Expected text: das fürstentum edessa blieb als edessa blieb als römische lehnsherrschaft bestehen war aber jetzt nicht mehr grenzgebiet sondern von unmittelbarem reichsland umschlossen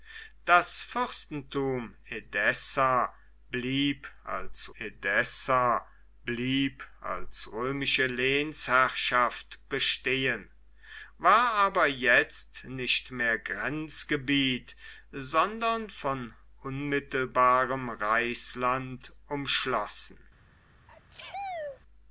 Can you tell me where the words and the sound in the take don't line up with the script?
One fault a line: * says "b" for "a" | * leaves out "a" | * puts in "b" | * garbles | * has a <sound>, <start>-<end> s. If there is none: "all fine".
* has a sneeze, 20.9-21.8 s